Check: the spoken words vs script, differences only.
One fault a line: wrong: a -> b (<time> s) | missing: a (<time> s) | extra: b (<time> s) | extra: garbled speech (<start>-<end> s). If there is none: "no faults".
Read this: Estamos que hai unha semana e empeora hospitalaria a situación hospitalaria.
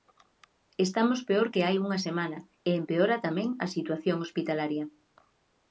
extra: peor (1.3 s)
wrong: hospitalaria -> tamén (3.3 s)